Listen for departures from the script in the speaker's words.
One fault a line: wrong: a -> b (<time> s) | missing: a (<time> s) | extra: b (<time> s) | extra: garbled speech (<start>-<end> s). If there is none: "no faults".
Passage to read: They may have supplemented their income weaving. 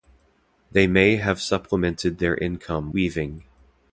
no faults